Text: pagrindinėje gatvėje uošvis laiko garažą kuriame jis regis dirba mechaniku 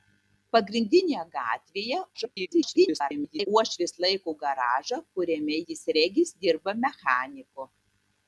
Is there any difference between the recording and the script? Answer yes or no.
yes